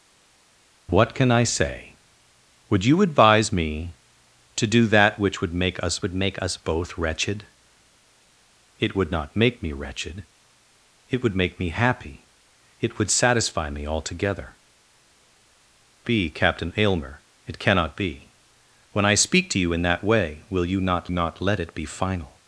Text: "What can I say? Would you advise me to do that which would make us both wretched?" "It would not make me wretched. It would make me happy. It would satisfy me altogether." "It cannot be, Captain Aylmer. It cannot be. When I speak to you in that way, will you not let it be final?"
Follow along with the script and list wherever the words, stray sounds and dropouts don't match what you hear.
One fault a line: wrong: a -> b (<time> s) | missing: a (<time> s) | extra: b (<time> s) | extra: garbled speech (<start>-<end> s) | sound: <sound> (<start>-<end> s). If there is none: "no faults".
extra: would make us (6.0 s)
missing: It cannot (14.6 s)
extra: not (21.1 s)